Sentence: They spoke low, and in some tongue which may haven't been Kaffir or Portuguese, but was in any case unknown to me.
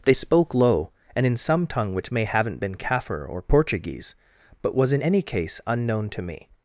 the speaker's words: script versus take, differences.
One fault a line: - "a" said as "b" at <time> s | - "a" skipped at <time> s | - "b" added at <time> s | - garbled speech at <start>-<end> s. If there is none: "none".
none